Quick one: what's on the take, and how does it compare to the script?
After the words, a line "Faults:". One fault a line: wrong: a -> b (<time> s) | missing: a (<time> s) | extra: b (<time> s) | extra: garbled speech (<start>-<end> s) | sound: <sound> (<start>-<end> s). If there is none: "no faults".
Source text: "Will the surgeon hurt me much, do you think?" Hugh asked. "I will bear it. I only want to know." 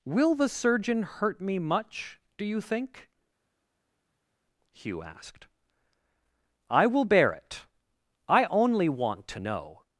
"Will the surgeon hurt me much, do you think?" Hugh asked. "I will bear it. I only want to know."
Faults:
no faults